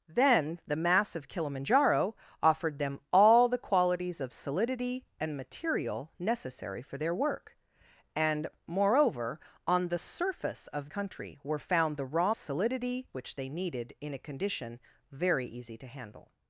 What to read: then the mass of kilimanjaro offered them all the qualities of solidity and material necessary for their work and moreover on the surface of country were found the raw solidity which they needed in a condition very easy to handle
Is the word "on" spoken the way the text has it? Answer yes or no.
yes